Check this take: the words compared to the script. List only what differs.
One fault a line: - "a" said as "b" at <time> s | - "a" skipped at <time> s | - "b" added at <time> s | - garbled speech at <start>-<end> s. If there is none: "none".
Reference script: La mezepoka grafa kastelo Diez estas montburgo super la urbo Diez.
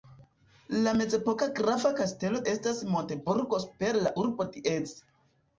- "Diez" skipped at 2.4 s